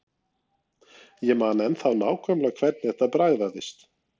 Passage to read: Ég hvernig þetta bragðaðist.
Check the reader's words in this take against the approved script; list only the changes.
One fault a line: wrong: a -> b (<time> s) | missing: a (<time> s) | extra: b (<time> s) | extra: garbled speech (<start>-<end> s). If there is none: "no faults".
extra: man ennþá nákvæmlega (1.4 s)